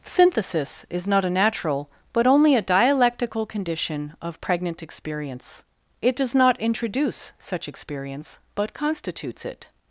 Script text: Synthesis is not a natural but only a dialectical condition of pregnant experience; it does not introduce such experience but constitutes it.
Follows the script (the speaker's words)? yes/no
yes